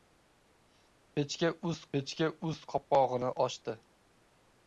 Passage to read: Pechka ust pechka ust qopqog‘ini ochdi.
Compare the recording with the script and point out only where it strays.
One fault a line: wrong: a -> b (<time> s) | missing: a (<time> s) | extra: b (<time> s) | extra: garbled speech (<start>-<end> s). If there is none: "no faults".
no faults